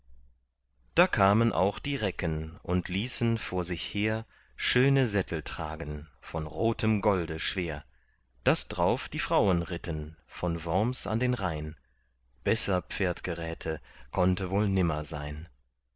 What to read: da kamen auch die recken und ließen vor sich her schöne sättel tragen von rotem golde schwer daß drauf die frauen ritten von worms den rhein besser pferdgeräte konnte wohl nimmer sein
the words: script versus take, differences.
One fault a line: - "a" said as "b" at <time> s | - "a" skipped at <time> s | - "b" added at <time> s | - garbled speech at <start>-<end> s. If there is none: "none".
- "an" added at 11.1 s